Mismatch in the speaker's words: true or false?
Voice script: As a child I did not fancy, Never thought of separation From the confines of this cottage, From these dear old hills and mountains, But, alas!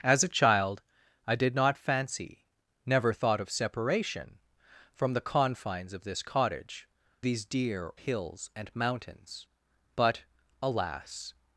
true